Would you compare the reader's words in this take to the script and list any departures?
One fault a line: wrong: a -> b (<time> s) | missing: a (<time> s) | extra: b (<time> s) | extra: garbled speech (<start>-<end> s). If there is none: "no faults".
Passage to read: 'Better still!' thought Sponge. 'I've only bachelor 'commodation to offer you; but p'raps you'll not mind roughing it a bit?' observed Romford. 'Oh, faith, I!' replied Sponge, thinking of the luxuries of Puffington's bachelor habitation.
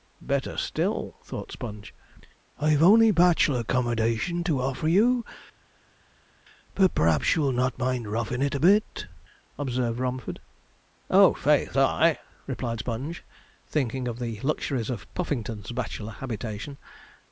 no faults